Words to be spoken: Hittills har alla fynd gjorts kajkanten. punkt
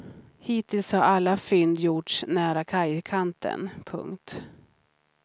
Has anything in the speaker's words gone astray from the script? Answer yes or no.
yes